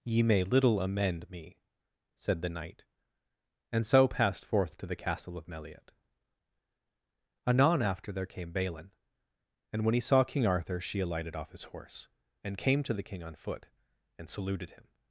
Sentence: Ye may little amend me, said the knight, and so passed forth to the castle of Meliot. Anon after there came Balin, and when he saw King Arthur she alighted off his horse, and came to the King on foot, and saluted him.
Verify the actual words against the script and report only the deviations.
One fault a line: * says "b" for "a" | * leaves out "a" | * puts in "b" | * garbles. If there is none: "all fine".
all fine